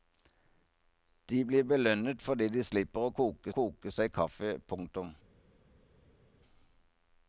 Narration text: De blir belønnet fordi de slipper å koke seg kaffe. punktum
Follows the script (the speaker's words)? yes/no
no